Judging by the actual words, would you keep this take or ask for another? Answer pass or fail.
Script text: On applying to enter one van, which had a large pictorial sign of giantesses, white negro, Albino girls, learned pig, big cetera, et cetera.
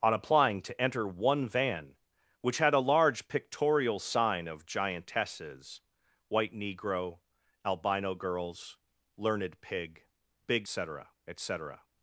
pass